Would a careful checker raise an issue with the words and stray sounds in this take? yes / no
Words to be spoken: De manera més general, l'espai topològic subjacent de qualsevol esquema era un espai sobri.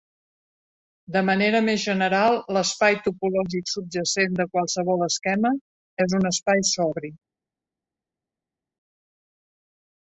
yes